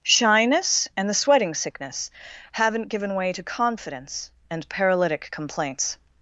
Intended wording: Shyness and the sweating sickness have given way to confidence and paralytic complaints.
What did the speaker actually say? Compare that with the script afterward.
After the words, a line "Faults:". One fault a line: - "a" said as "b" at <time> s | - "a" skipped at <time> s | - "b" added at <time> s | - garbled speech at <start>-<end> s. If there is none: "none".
Shyness and the sweating sickness haven't given way to confidence and paralytic complaints.
Faults:
- "have" said as "haven't" at 2.5 s